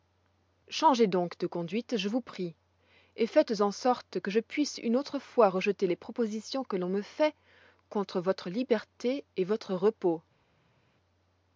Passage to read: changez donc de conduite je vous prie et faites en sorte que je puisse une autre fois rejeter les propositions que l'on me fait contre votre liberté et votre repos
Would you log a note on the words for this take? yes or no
no